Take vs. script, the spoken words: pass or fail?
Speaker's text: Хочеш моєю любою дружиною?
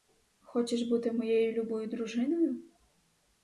fail